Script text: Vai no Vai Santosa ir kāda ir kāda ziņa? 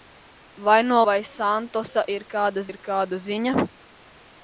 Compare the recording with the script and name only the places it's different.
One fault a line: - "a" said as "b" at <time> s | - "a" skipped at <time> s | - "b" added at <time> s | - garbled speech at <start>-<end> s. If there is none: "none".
none